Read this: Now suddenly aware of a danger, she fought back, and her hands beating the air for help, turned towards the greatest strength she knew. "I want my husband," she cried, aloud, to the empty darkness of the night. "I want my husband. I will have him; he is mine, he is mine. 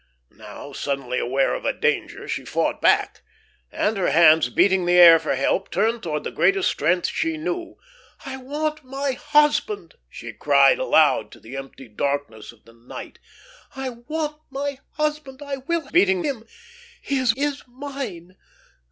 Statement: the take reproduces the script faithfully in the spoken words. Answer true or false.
false